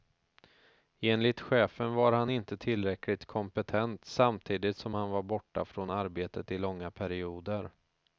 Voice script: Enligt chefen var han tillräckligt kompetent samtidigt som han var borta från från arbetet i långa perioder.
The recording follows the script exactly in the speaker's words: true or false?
false